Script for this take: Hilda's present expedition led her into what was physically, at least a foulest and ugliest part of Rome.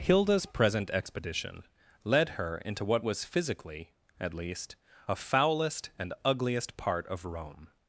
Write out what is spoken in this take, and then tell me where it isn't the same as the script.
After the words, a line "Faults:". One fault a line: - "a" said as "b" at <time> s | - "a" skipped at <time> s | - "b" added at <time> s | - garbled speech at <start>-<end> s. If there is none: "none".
Hilda's present expedition led her into what was physically, at least a foulest and ugliest part of Rome.
Faults:
none